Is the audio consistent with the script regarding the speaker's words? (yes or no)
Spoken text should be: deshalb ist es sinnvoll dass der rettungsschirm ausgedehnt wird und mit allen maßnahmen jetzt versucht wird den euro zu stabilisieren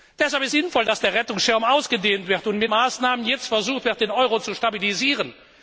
no